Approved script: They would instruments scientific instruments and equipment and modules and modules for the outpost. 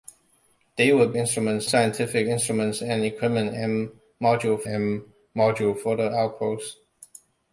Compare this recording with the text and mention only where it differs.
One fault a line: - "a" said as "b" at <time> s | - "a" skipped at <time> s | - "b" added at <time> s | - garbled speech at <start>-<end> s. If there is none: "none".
none